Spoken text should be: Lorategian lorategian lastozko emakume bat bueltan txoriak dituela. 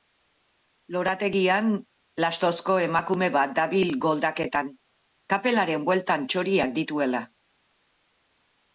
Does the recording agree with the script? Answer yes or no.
no